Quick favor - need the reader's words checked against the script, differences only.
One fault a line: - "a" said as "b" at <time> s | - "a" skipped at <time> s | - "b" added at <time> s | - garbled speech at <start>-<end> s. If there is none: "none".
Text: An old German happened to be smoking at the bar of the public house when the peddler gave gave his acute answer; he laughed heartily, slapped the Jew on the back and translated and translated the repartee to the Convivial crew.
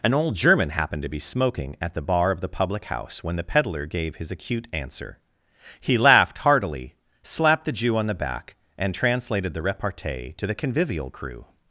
- "gave" skipped at 4.2 s
- "and translated" skipped at 9.5 s